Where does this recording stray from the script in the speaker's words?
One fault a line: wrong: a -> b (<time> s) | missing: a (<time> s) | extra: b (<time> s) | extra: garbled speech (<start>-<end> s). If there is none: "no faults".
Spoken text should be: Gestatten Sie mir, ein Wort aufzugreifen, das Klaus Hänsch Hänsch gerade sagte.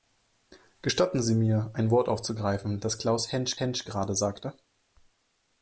no faults